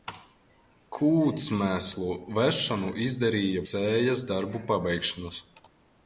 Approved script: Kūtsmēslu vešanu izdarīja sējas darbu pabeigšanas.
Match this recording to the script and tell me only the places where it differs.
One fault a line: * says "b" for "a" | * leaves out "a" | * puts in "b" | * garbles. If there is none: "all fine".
all fine